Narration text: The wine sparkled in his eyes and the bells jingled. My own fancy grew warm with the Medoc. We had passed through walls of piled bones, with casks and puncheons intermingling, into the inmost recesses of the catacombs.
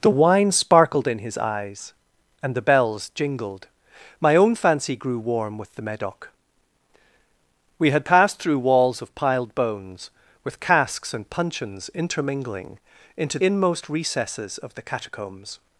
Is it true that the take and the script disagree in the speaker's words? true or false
true